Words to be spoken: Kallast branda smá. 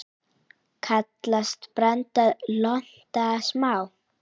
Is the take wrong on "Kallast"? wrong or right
right